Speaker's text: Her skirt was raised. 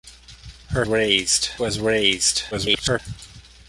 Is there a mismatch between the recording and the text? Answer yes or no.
yes